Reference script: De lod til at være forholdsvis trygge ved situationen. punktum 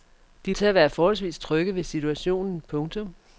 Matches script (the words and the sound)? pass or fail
fail